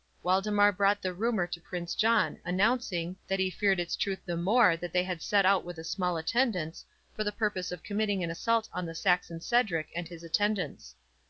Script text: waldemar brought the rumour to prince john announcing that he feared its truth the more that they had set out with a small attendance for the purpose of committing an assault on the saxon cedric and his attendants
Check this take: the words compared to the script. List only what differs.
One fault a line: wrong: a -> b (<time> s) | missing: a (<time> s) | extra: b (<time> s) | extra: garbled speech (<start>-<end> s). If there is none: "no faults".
no faults